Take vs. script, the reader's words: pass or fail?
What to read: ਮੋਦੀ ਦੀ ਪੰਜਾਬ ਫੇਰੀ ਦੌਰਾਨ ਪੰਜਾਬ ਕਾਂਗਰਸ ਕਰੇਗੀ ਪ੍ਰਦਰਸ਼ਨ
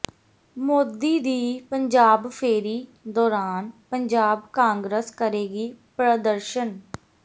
pass